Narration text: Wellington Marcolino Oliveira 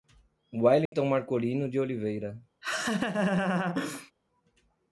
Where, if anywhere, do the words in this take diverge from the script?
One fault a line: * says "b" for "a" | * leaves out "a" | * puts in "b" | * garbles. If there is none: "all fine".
* puts in "de"